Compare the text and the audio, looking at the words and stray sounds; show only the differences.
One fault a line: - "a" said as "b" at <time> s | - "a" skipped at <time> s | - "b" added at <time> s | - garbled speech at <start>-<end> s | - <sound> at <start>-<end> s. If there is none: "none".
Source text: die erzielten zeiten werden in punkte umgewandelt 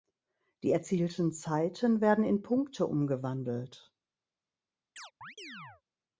- chirp at 5.0-5.8 s